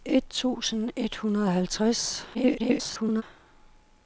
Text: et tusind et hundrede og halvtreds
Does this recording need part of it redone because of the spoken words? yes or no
yes